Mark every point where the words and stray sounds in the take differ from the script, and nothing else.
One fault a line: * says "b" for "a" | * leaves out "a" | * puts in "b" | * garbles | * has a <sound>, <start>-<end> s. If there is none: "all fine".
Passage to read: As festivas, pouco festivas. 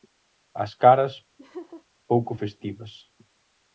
* says "caras" for "festivas"
* has a laugh, 1.4-1.8 s